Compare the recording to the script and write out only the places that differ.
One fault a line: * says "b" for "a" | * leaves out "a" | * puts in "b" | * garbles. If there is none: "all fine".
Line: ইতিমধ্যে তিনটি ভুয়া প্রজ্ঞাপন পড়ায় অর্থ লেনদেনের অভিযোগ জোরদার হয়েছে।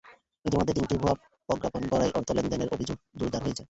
all fine